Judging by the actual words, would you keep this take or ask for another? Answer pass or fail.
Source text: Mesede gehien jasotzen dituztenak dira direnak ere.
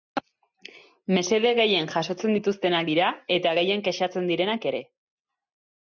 fail